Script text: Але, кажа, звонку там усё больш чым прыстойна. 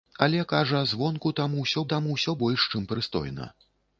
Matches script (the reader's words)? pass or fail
fail